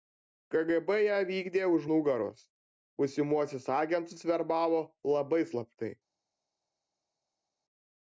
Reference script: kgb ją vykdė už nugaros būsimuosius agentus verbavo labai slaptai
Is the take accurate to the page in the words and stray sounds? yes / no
yes